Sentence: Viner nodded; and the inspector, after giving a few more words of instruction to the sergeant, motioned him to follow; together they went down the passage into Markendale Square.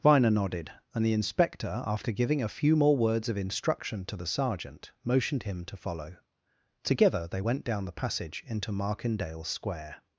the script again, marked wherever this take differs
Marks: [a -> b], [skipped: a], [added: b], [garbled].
Viner nodded; and the inspector, after giving a few more words of instruction to the sergeant, motioned him to follow; together they went down the passage into Markendale Square.